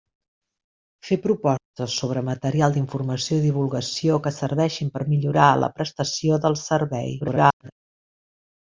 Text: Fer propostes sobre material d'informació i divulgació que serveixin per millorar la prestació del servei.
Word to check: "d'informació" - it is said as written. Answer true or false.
true